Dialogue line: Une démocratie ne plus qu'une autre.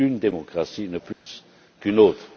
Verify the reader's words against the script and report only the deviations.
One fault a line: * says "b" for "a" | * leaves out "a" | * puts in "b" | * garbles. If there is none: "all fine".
all fine